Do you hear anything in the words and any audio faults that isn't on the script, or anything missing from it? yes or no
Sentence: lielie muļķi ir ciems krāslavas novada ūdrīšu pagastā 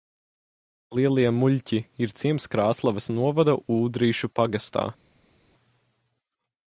no